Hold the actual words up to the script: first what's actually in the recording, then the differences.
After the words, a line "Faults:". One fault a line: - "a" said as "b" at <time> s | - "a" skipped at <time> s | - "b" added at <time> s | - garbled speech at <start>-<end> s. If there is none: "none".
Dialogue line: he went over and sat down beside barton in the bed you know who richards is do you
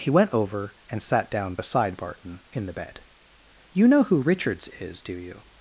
he went over and sat down beside barton in the bed you know who richards is do you
Faults:
none